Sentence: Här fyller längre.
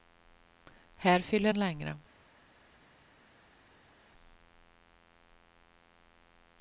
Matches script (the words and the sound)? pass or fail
pass